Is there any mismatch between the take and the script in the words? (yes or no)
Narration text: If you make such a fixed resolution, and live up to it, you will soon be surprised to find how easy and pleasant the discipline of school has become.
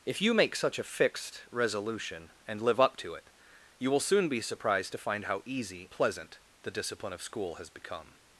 yes